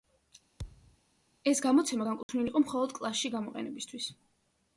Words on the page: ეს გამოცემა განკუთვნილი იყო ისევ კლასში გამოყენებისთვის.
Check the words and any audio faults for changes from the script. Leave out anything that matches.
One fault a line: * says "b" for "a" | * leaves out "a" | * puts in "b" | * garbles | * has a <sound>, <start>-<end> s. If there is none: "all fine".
* has a thud, 0.6-1.0 s
* has a dropout, 2.2-2.3 s
* says "მხოლოდ" for "ისევ"